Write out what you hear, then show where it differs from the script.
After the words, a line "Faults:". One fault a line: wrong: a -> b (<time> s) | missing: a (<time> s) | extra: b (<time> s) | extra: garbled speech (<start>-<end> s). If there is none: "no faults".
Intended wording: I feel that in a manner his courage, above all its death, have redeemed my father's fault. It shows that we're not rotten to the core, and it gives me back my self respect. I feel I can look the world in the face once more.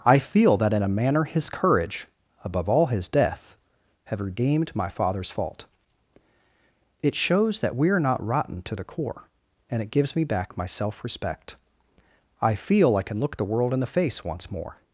I feel that in a manner his courage, above all his death, have redeemed my father's fault. It shows that we're not rotten to the core, and it gives me back my self respect. I feel I can look the world in the face once more.
Faults:
wrong: its -> his (2.9 s)